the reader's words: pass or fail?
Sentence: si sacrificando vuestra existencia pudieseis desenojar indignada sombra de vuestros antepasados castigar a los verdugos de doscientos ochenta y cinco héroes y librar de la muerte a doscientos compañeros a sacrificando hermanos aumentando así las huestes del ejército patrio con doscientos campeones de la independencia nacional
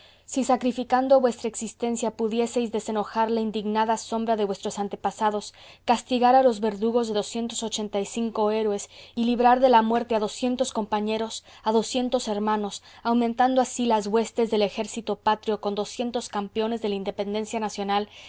fail